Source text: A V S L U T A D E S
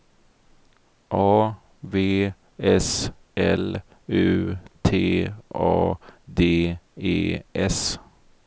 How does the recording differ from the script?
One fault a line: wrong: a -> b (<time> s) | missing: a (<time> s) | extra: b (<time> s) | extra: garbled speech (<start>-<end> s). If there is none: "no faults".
no faults